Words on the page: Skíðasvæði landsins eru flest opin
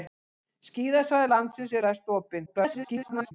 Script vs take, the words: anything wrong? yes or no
yes